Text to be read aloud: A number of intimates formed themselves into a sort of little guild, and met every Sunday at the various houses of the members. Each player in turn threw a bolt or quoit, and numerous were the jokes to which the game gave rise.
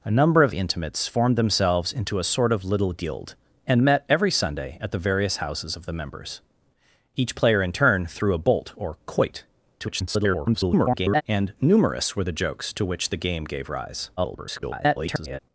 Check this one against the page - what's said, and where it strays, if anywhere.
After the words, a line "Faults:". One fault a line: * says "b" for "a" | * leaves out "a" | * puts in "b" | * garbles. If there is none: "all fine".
A number of intimates formed themselves into a sort of little guild, and met every Sunday at the various houses of the members. Each player in turn threw a bolt or quoit, [garbled] and numerous were the jokes to which the game gave rise. [garbled]
Faults:
* garbles
* garbles